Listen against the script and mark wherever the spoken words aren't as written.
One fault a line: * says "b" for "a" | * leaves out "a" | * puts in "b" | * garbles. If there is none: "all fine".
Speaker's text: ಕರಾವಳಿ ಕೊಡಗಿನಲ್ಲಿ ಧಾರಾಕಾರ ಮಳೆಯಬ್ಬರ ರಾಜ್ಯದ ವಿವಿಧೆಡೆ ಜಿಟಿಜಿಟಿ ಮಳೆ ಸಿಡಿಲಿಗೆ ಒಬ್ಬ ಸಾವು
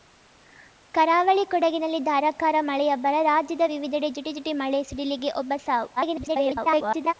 * garbles